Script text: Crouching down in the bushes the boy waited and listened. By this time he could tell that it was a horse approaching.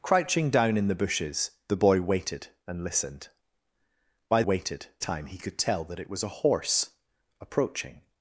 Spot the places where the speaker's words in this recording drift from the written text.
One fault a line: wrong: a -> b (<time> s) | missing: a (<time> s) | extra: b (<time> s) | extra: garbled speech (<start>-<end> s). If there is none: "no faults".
wrong: this -> waited (4.4 s)